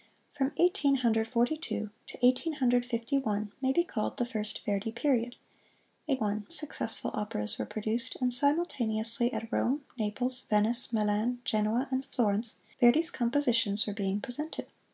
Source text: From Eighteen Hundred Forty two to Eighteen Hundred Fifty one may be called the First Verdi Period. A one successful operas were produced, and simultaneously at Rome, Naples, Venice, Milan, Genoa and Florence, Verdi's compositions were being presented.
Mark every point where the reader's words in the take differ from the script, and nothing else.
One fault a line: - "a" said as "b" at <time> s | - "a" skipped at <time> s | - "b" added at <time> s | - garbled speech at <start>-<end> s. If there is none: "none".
none